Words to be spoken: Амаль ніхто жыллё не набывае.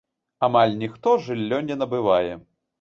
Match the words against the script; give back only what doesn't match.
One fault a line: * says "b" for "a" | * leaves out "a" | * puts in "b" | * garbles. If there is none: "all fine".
all fine